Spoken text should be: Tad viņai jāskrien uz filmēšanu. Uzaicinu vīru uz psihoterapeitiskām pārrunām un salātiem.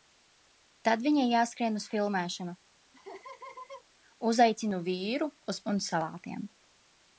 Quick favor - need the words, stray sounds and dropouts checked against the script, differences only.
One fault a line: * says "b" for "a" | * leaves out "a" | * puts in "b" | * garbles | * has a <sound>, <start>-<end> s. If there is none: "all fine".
* has a laugh, 2.9-3.8 s
* leaves out "psihoterapeitiskām pārrunām"